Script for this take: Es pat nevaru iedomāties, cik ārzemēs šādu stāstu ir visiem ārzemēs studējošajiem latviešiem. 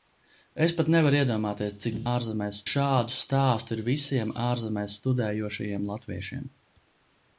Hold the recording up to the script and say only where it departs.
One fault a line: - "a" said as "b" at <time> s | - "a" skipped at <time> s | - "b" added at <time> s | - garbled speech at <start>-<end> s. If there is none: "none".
none